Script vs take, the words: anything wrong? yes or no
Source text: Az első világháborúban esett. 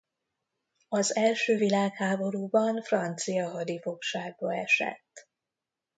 yes